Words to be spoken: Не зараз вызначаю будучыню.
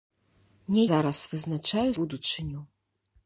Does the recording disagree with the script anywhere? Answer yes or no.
no